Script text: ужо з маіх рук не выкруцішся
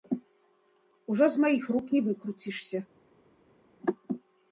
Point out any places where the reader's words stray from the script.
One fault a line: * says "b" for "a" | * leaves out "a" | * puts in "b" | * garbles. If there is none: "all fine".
all fine